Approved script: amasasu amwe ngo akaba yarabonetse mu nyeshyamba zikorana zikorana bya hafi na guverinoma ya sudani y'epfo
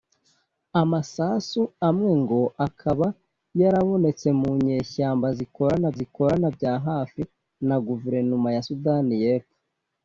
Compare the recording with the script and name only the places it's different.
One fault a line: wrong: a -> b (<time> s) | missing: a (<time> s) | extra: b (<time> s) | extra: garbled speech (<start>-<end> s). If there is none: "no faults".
no faults